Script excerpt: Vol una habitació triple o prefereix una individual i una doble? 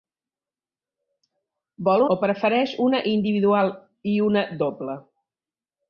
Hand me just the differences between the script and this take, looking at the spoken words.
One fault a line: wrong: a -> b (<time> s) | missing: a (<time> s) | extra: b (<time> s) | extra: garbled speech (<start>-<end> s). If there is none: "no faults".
missing: una habitació triple (2.0 s)